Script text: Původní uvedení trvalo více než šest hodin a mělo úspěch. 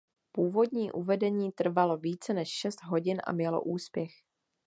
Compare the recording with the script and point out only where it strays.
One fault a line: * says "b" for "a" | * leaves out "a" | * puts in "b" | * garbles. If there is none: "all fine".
all fine